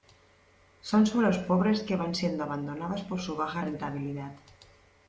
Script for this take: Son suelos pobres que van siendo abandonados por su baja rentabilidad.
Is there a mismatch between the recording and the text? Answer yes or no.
no